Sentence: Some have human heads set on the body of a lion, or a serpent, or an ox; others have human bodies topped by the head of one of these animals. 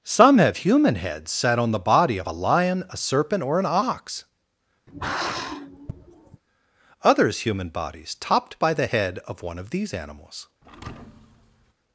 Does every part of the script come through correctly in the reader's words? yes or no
no